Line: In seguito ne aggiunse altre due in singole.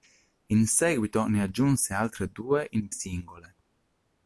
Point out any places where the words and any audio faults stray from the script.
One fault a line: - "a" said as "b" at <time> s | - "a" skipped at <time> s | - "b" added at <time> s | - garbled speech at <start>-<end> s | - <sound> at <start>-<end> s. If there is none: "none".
none